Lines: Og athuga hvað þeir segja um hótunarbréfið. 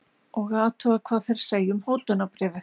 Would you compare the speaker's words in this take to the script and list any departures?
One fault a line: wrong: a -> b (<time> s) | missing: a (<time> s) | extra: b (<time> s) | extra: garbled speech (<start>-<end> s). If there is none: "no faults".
no faults